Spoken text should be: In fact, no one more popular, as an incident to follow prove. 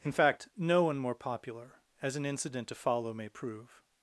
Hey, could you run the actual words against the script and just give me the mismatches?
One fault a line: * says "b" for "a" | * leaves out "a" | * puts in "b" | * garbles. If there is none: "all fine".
* puts in "may"